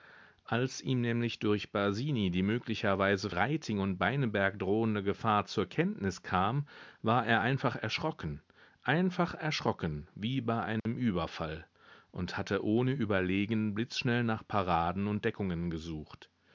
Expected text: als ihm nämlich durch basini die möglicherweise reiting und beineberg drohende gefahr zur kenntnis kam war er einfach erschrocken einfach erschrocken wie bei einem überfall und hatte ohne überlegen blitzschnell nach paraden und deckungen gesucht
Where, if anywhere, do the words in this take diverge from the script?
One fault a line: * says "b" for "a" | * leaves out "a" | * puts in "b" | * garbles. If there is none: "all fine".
all fine